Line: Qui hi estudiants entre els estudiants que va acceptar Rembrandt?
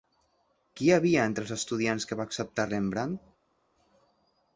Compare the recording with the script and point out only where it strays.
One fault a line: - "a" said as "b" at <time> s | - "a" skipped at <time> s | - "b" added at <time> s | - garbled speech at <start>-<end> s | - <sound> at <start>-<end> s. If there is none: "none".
- "estudiants" said as "havia" at 0.9 s